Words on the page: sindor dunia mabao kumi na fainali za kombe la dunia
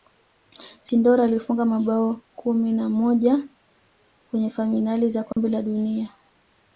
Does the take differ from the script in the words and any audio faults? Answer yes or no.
yes